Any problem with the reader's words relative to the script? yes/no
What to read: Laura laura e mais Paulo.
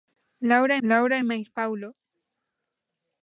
no